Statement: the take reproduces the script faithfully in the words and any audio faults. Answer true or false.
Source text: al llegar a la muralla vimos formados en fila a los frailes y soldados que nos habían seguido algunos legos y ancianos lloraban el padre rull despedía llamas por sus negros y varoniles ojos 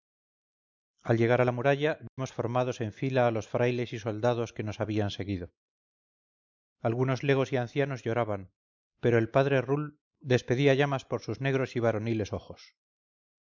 false